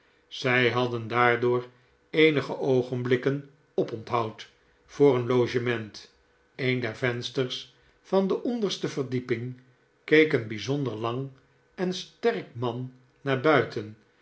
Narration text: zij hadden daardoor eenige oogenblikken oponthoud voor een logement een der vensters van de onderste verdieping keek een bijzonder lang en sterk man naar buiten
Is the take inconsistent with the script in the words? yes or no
no